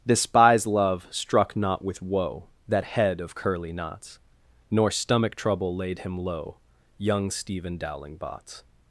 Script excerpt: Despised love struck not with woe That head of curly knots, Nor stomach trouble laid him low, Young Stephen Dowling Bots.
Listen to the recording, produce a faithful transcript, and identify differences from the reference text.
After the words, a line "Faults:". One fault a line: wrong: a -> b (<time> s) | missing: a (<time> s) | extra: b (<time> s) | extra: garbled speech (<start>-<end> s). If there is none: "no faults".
Despised love struck not with woe That head of curly knots, Nor stomach trouble laid him low, Young Stephen Dowling Bots.
Faults:
no faults